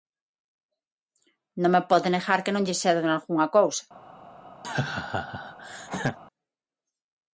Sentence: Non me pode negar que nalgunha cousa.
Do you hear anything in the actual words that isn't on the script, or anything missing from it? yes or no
yes